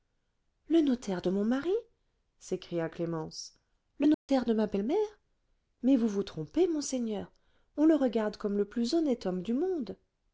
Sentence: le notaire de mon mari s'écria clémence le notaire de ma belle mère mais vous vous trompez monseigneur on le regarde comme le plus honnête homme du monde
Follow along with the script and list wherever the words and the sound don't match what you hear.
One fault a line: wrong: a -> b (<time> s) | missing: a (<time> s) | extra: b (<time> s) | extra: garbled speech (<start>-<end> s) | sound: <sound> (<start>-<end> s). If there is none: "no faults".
sound: dropout (4.1-4.3 s)